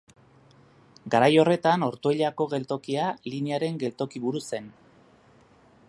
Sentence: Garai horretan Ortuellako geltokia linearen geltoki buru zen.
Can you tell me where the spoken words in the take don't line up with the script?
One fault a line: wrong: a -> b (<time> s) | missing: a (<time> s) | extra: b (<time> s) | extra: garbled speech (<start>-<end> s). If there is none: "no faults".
no faults